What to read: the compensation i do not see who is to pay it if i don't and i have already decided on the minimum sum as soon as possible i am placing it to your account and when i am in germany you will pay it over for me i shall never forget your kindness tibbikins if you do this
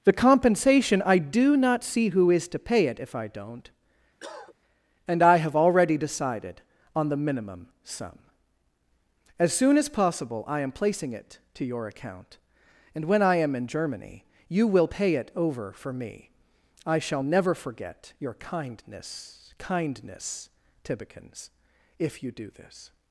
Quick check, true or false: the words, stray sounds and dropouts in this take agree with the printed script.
false